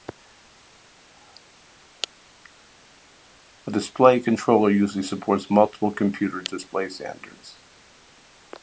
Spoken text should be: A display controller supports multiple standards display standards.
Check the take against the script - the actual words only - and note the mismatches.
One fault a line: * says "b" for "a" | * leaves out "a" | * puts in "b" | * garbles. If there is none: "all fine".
* puts in "usually"
* says "computer" for "standards"